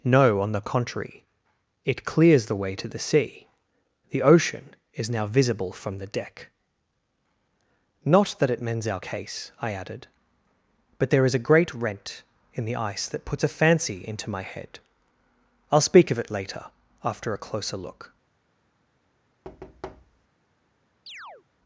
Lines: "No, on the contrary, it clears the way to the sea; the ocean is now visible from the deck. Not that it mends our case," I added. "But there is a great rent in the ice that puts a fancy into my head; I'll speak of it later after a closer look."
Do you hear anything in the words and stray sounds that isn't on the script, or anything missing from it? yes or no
yes